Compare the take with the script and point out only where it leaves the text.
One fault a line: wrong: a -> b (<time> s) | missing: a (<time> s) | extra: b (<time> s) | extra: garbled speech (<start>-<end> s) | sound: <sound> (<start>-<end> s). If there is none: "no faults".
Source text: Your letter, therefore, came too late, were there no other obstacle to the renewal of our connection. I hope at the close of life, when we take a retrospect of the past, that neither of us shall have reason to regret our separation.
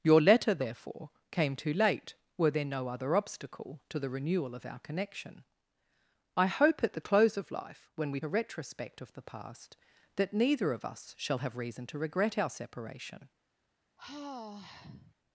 missing: take (8.2 s)
sound: sigh (14.0-15.1 s)